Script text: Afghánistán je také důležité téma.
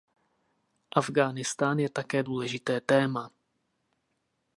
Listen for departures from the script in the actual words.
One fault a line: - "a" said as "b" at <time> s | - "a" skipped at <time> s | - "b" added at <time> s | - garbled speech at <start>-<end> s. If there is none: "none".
none